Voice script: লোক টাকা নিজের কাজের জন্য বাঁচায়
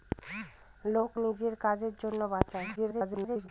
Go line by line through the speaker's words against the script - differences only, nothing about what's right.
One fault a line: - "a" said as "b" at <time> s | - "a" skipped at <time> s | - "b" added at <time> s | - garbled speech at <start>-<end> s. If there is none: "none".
- "টাকা" skipped at 1.1 s
- garbled speech at 2.8-3.5 s